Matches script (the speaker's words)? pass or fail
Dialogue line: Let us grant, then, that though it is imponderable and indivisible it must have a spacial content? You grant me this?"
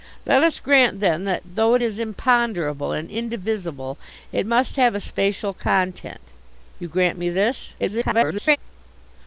fail